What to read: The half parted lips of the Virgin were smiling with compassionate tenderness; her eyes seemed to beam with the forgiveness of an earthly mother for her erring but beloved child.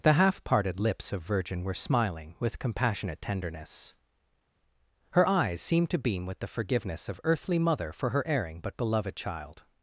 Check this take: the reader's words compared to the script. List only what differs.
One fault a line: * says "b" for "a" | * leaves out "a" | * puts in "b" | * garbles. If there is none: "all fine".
* leaves out "the"
* leaves out "an"